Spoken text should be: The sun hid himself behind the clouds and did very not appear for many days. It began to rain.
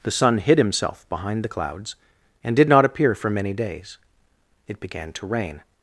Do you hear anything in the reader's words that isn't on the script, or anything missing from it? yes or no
yes